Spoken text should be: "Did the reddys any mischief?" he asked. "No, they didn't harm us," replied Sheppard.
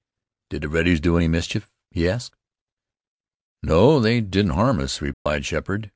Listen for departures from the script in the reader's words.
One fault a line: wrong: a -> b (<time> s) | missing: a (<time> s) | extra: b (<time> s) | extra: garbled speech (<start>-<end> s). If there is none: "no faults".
extra: do (1.0 s)